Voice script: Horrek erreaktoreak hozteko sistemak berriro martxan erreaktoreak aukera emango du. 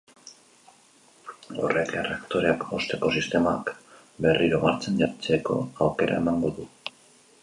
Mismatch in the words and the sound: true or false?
true